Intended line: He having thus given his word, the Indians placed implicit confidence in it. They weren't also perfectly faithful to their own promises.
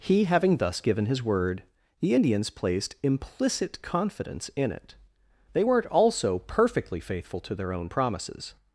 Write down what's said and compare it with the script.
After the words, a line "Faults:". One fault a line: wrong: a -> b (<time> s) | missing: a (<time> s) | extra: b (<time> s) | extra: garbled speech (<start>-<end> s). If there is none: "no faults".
He having thus given his word, the Indians placed implicit confidence in it. They weren't also perfectly faithful to their own promises.
Faults:
no faults